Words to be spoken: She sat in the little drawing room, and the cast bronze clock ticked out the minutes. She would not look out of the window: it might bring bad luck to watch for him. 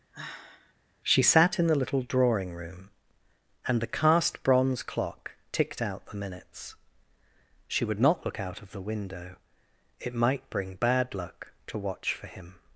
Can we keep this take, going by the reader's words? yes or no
yes